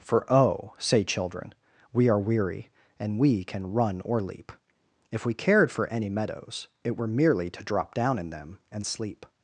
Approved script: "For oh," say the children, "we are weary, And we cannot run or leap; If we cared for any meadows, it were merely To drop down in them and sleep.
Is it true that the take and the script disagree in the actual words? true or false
true